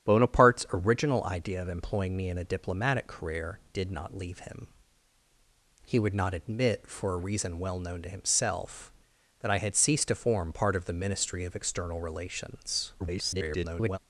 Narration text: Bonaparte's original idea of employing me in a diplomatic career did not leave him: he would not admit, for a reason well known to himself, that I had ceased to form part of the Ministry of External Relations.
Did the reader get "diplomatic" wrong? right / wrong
right